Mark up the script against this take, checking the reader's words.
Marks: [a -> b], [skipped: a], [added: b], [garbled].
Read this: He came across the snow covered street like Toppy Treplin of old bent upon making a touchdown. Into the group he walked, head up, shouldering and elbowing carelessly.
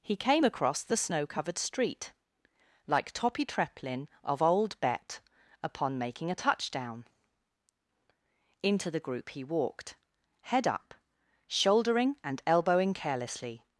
He came across the snow covered street like Toppy Treplin of old [bent -> bet] upon making a touchdown. Into the group he walked, head up, shouldering and elbowing carelessly.